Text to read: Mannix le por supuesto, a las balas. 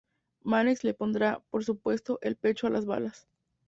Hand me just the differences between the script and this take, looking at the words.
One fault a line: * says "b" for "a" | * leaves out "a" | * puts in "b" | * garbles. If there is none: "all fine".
* puts in "pondrá"
* puts in "el pecho"